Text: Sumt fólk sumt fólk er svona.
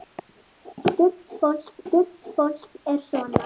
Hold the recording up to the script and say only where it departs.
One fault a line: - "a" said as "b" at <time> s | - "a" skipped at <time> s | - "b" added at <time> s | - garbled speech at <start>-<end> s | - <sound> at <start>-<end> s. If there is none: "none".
none